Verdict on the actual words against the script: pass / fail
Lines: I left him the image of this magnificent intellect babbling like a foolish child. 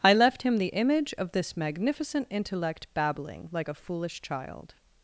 pass